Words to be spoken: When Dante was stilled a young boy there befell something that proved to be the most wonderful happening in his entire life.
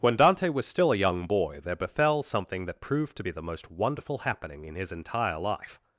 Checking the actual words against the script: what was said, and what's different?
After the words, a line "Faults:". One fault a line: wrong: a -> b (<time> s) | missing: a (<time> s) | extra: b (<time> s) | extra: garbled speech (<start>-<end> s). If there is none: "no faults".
When Dante was still a young boy there befell something that proved to be the most wonderful happening in his entire life.
Faults:
wrong: stilled -> still (0.7 s)